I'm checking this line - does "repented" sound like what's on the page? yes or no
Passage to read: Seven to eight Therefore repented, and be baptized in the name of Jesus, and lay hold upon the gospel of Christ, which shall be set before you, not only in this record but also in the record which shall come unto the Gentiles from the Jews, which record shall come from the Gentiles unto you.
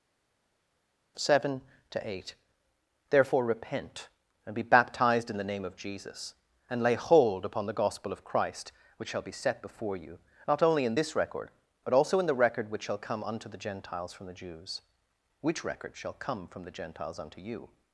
no